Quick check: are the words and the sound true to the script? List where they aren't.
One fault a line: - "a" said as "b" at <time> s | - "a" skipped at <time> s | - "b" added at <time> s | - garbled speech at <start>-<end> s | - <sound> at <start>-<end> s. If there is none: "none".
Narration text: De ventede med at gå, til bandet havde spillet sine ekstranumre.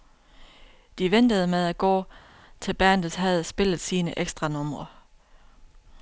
none